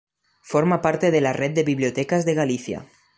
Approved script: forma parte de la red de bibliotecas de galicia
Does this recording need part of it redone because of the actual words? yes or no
no